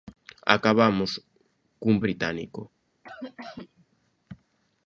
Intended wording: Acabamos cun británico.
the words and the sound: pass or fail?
fail